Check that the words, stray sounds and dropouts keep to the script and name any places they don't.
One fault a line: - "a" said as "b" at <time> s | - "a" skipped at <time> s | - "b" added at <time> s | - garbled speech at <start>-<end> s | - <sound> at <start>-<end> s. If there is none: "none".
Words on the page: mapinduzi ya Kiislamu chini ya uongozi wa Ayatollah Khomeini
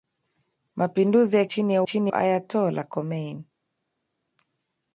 - "Kiislamu" skipped at 1.4 s
- "uongozi" said as "chini" at 1.8 s